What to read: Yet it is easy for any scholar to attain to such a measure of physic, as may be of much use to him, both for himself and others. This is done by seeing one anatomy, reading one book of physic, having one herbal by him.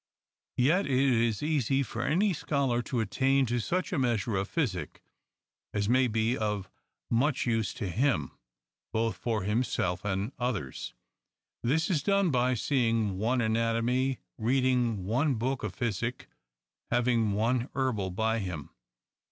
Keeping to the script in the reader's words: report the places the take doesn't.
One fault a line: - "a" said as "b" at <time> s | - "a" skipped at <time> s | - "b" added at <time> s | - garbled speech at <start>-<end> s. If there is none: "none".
none